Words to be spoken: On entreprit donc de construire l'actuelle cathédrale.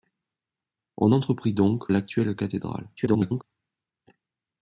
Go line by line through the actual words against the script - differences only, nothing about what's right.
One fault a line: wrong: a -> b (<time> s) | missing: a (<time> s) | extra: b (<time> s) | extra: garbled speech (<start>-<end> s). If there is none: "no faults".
missing: de construire (1.9 s)
extra: garbled speech (3.0-3.4 s)